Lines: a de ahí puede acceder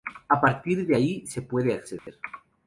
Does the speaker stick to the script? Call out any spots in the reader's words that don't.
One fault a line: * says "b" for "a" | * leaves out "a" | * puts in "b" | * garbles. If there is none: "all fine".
* puts in "partir"
* puts in "se"